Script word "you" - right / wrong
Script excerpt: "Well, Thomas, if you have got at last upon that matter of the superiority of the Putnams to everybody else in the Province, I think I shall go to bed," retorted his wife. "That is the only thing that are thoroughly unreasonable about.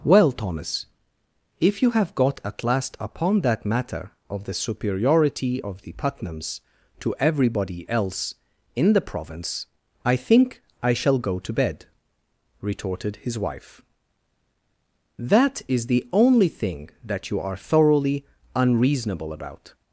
right